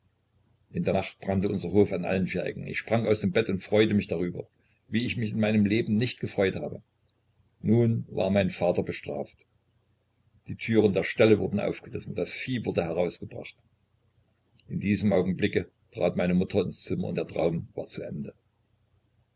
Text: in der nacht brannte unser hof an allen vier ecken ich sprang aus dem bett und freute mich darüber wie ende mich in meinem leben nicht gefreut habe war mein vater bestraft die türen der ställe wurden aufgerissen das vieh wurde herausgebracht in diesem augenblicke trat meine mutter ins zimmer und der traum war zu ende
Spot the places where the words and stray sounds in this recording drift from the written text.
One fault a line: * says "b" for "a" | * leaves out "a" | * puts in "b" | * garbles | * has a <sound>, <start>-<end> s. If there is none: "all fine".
* says "ich" for "ende"
* puts in "nun"